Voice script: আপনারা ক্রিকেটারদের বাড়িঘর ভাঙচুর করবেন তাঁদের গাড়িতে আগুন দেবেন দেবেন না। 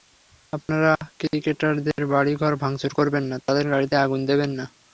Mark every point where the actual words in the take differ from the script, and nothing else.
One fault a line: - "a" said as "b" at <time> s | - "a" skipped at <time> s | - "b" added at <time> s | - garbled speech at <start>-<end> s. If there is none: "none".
- "না" added at 3.2 s
- "দেবেন" skipped at 4.5 s